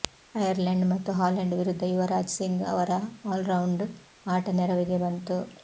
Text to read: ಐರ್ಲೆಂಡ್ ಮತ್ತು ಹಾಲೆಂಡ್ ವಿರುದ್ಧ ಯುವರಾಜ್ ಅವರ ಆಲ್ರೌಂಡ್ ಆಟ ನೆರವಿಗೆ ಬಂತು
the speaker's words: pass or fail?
fail